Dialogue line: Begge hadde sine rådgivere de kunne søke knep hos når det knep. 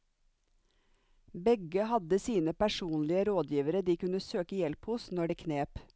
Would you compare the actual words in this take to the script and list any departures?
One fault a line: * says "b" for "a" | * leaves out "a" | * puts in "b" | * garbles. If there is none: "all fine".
* puts in "personlige"
* says "hjelp" for "knep"